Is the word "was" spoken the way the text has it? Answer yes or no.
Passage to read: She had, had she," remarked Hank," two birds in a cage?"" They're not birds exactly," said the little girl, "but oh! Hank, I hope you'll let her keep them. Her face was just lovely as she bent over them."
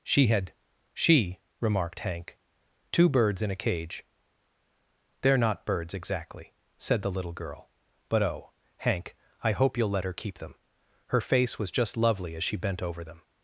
yes